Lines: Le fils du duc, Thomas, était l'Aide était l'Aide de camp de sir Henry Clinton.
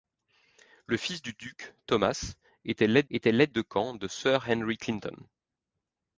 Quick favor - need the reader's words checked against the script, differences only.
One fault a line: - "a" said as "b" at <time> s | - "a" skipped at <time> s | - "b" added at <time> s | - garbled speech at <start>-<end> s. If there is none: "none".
none